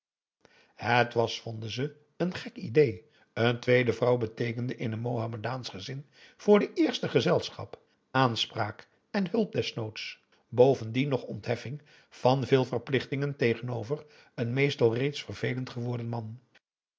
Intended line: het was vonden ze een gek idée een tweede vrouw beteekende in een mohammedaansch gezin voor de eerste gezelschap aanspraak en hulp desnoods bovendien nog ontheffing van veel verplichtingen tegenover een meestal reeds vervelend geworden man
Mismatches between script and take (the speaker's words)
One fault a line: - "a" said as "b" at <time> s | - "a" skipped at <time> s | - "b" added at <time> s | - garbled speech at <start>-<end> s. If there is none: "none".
none